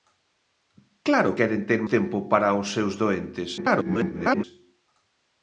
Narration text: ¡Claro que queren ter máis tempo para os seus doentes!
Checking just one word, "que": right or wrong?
wrong